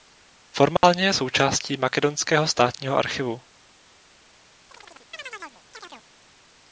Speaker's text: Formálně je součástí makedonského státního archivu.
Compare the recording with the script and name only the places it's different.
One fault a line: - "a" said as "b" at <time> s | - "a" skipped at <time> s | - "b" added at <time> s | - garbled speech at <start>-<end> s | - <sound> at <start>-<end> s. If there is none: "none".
- dropout at 0.8-0.8 s
- chirp at 4.7-6.1 s